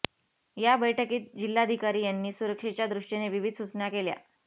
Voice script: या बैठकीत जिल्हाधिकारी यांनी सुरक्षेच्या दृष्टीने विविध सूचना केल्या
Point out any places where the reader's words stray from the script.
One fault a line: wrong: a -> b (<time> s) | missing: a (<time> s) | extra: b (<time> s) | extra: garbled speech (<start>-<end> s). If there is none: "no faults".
no faults